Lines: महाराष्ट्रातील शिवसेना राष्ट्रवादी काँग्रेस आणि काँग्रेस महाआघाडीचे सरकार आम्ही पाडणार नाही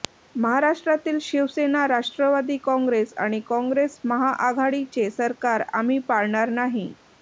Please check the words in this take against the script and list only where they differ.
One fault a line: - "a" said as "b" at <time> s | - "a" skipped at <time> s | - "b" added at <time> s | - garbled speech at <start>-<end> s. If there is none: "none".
none